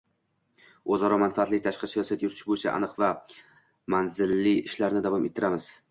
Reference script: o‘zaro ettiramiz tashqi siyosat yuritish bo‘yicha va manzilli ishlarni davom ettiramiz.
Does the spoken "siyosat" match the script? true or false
true